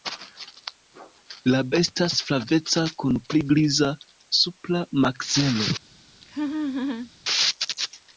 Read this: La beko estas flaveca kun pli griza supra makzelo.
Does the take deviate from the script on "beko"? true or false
true